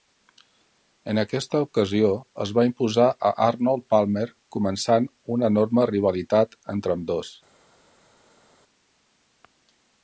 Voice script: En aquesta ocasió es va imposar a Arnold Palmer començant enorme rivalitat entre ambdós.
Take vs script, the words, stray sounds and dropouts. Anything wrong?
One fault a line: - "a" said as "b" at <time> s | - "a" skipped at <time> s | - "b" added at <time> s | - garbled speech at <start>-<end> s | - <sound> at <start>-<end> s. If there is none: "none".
- "una" added at 5.4 s